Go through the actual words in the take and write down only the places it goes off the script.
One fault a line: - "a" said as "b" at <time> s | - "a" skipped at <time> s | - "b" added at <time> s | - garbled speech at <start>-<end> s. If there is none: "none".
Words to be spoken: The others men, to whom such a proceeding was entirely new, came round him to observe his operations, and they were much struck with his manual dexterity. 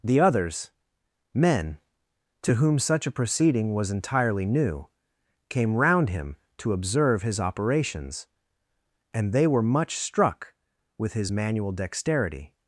none